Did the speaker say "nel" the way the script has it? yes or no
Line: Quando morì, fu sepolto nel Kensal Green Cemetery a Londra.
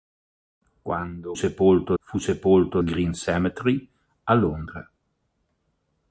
no